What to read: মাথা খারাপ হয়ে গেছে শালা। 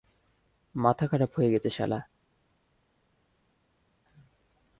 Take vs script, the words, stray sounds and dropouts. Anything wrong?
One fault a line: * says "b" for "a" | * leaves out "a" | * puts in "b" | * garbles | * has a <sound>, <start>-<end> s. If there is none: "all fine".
all fine